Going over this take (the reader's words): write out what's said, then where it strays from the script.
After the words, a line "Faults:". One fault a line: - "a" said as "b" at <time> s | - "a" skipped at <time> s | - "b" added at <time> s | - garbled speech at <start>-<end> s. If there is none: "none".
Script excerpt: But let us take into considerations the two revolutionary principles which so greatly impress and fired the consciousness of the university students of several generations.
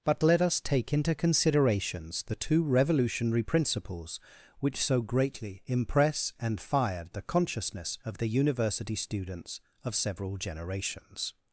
But let us take into considerations the two revolutionary principles which so greatly impress and fired the consciousness of the university students of several generations.
Faults:
none